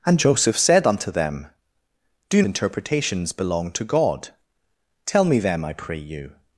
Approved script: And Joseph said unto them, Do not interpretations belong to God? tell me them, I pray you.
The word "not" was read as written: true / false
false